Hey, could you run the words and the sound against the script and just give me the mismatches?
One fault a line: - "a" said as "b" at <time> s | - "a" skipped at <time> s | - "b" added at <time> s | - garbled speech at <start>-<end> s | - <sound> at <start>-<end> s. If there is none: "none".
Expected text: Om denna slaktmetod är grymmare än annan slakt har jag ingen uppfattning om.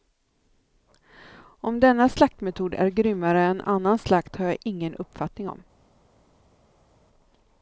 none